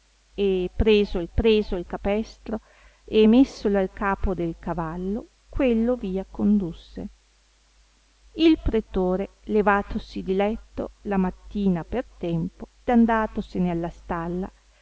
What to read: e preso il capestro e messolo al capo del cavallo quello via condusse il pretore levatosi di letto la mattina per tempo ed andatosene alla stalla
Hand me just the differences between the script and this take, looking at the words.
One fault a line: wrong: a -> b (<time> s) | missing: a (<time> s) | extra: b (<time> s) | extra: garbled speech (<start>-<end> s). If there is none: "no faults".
extra: preso il (1.3 s)
missing: ed (12.7 s)